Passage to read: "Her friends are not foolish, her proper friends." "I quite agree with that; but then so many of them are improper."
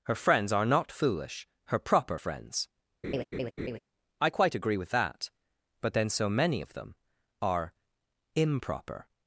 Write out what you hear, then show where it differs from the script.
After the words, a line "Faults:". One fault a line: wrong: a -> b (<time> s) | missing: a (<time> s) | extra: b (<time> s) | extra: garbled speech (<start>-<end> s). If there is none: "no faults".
"Her friends are not foolish, her proper friends." "I quite agree with that; but then so many of them are improper."
Faults:
no faults